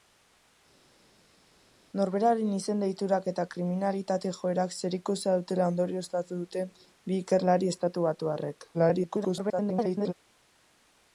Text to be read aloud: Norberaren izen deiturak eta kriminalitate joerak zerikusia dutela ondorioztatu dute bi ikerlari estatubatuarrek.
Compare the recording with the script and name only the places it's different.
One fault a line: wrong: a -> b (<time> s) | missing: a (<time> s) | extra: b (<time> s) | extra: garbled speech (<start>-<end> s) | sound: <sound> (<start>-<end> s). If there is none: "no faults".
extra: garbled speech (8.7-10.1 s)